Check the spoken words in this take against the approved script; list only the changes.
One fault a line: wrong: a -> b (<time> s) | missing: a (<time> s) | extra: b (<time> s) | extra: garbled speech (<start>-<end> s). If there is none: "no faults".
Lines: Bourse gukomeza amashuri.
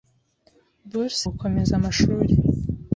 no faults